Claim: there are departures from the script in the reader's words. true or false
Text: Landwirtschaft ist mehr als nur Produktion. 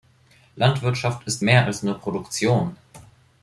false